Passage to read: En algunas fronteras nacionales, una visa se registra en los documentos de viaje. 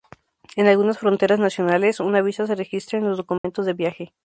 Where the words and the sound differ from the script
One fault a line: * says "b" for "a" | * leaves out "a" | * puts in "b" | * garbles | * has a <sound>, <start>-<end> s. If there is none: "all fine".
* has a dropout, 3.4-3.4 s